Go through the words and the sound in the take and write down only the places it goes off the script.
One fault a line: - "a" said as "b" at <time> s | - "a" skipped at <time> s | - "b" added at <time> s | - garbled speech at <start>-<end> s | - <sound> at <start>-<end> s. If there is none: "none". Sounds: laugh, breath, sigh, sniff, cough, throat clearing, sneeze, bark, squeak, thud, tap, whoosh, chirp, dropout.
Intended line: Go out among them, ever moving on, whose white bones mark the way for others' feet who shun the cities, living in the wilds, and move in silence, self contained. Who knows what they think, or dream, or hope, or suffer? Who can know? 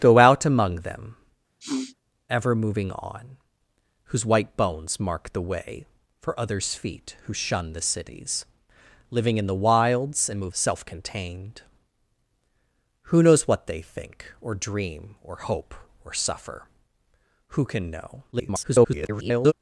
- sniff at 1.6-2.0 s
- "in silence" skipped at 10.5 s
- garbled speech at 18.3-19.5 s